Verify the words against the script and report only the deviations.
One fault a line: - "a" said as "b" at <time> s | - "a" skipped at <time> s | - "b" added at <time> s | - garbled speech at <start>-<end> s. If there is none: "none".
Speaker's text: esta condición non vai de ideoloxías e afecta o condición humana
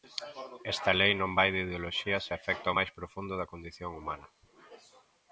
- "condición" said as "lei" at 1.0 s
- "máis profundo da" added at 2.8 s